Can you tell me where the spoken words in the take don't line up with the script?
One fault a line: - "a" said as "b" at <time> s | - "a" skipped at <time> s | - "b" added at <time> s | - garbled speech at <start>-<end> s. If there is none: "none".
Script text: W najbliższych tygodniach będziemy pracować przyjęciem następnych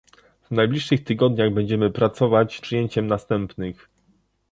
none